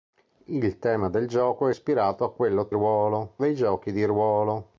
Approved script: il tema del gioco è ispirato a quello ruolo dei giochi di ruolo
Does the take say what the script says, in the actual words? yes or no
yes